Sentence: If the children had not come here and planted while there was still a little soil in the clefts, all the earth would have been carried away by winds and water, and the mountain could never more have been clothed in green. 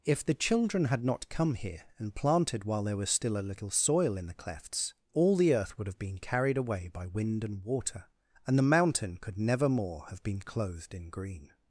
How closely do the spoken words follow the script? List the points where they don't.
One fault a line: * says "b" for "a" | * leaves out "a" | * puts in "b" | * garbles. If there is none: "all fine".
* says "wind" for "winds"